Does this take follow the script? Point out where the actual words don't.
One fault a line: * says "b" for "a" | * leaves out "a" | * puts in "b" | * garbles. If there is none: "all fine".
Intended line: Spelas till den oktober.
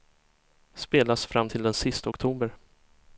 * puts in "fram"
* puts in "sista"